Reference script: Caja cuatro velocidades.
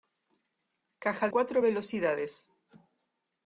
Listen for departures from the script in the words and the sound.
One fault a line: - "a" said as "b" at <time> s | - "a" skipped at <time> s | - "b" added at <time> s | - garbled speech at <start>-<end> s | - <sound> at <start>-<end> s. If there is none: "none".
none